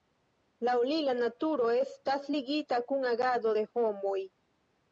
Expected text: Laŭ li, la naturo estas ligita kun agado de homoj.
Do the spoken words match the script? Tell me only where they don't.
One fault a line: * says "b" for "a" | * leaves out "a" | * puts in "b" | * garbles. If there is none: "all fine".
all fine